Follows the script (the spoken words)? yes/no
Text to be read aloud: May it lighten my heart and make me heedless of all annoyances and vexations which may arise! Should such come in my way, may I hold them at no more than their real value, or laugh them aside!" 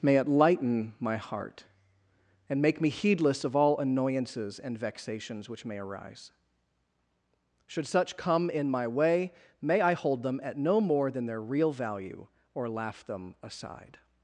yes